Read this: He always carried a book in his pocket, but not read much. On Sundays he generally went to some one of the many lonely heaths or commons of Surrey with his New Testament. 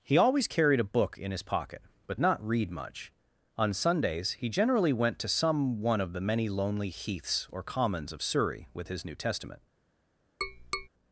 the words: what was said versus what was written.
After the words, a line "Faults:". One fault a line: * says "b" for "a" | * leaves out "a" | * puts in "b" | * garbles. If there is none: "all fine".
He always carried a book in his pocket, but not read much. On Sundays he generally went to some one of the many lonely heaths or commons of Surrey with his New Testament.
Faults:
all fine